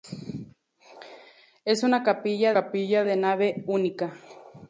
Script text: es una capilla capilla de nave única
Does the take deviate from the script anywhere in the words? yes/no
no